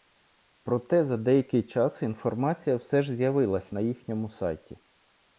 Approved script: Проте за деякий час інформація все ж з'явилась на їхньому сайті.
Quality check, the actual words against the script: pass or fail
pass